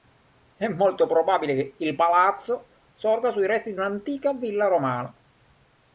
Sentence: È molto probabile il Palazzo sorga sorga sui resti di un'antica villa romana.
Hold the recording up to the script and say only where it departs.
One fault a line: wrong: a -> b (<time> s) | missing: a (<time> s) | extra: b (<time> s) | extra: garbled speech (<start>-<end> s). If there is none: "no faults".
extra: che (1.5 s)
missing: sorga (3.3 s)